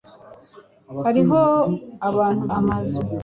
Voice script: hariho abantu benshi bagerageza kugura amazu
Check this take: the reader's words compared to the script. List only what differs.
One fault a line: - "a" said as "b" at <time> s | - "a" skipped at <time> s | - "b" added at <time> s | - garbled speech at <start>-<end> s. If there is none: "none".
- "benshi bagerageza kugura" skipped at 2.4 s